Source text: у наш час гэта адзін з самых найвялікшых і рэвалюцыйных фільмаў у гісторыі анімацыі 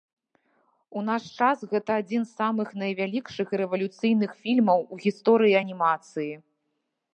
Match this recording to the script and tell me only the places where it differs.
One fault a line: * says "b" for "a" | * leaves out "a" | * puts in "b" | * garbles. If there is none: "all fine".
all fine